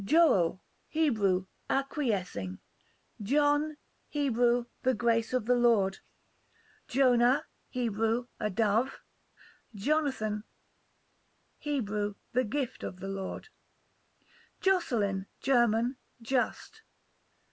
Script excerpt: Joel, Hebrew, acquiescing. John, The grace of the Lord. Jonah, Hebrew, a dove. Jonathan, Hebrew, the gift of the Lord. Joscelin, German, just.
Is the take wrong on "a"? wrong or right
right